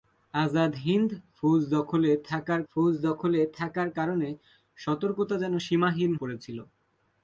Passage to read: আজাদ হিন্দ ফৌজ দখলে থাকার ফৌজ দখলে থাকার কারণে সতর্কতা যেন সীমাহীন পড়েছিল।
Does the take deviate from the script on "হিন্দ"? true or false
false